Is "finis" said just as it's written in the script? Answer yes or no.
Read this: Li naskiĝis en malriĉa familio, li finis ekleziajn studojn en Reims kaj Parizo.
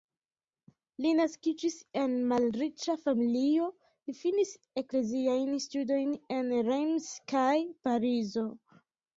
yes